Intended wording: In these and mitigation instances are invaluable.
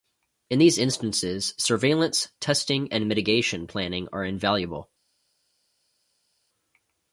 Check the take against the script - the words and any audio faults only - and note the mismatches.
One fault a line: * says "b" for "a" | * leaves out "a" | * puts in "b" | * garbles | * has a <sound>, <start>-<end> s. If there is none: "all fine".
* puts in "instances surveillance testing"
* says "planning" for "instances"